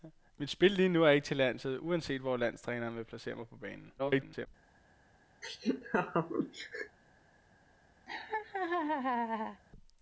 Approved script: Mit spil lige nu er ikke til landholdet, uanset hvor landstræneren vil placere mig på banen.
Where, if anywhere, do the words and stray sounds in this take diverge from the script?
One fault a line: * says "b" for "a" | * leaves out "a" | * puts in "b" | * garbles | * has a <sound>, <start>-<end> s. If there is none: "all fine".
* garbles
* has a laugh, 5.4-7.0 s
* has a laugh, 8.1-9.6 s